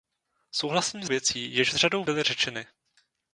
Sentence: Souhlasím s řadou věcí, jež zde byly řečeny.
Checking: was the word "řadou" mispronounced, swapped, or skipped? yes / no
yes